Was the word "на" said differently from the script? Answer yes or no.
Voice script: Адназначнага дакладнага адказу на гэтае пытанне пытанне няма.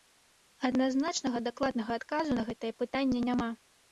no